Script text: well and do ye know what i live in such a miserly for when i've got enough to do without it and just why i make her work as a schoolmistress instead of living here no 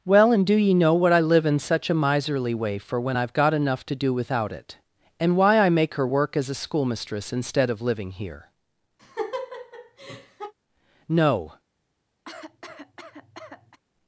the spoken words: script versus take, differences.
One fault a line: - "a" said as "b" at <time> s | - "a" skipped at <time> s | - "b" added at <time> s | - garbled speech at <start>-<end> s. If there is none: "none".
- "way" added at 2.5 s
- "just" skipped at 5.3 s